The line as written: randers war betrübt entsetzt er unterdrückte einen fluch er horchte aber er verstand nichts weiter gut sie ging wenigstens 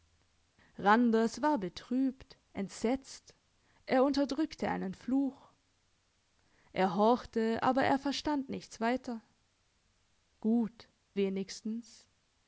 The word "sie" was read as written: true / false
false